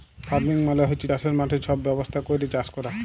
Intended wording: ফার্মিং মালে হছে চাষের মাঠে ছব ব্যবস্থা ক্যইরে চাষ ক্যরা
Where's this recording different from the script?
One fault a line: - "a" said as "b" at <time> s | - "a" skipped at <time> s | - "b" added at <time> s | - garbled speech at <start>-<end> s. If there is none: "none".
none